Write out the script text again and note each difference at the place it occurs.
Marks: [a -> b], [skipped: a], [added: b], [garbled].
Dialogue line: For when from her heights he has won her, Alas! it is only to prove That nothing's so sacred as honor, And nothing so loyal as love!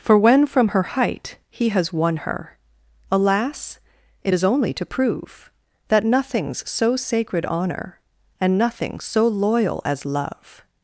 For when from her [heights -> height] he has won her, Alas! it is only to prove That nothing's so sacred [skipped: as] honor, And nothing so loyal as love!